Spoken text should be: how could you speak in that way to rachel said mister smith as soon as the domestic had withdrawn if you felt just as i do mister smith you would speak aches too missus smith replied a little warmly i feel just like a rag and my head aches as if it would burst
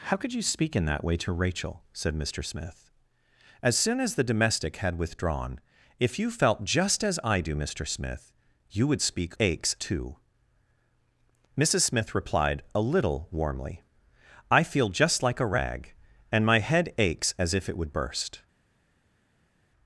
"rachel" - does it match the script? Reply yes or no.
yes